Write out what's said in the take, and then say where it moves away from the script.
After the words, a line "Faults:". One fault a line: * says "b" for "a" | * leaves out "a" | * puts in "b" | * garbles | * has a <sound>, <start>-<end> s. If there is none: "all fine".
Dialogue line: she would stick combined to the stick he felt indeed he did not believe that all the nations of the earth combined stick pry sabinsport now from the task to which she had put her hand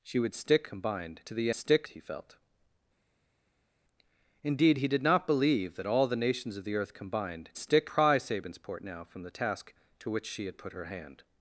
she would stick combined to the stick he felt indeed he did not believe that all the nations of the earth combined stick pry sabinsport now from the task to which she had put her hand
Faults:
all fine